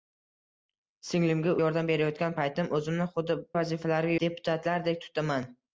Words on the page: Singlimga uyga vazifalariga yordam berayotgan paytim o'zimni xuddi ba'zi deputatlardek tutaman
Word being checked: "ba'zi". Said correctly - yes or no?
no